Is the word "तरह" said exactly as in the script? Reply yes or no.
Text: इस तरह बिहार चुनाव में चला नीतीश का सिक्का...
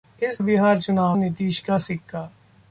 no